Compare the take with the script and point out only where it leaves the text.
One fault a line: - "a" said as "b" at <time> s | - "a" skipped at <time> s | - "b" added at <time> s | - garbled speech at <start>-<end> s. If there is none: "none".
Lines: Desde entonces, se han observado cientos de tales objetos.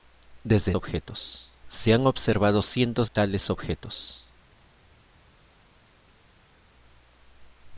- "entonces" said as "objetos" at 0.7 s
- "de" skipped at 3.1 s